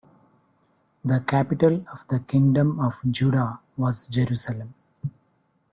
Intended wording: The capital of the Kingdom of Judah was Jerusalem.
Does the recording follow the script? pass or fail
pass